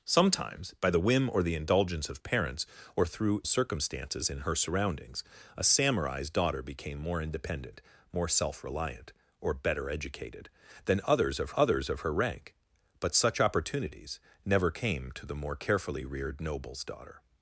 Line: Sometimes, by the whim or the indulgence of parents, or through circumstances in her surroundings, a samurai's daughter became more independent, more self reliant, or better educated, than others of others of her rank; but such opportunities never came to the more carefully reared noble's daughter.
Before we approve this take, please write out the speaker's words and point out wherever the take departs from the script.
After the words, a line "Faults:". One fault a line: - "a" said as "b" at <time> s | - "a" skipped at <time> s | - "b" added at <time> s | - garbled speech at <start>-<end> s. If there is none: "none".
Sometimes, by the whim or the indulgence of parents, or through circumstances in her surroundings, a samurai's daughter became more independent, more self reliant, or better educated, than others of others of her rank; but such opportunities never came to the more carefully reared noble's daughter.
Faults:
none